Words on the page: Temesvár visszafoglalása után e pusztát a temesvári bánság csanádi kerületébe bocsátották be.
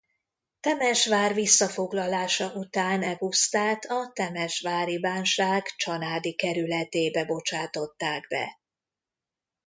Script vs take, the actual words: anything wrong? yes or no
no